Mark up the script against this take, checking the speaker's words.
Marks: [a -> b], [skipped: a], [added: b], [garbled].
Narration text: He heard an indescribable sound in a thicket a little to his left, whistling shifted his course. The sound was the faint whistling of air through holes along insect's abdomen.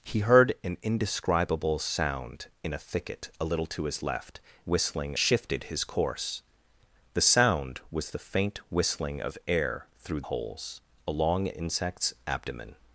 He heard an indescribable sound in a thicket a little to his left, whistling shifted his course. The sound was the faint whistling of air through holes along insect's abdomen.